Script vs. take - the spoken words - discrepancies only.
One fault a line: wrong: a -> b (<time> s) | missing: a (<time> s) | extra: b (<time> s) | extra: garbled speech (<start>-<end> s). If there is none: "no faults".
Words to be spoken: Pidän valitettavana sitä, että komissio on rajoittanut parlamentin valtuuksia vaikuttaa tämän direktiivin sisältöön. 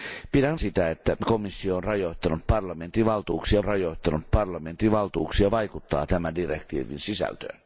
missing: valitettavana (0.6 s)
extra: rajoittanut parlamentin valtuuksia (3.6 s)